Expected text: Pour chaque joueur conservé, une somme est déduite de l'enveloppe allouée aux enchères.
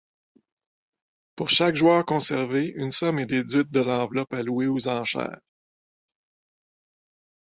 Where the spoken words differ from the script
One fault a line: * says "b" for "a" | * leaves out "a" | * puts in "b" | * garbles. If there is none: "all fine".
all fine